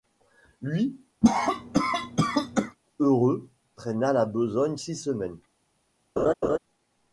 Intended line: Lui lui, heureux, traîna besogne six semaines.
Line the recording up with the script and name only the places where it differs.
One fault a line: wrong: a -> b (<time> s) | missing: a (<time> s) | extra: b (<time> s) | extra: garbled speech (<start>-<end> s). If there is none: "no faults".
missing: lui (0.9 s)
extra: la (4.1 s)